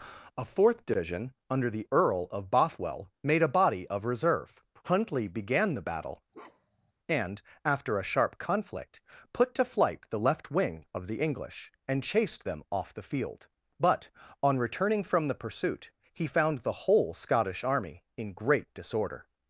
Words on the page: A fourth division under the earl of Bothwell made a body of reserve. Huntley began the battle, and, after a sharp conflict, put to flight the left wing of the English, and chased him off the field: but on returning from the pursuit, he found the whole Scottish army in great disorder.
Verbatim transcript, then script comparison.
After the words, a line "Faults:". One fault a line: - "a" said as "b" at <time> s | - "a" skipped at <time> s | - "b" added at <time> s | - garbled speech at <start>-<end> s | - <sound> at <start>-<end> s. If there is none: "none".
A fourth division under the earl of Bothwell made a body of reserve. Huntley began the battle, and, after a sharp conflict, put to flight the left wing of the English, and chased them off the field: but on returning from the pursuit, he found the whole Scottish army in great disorder.
Faults:
- bark at 6.3-6.9 s
- "him" said as "them" at 12.4 s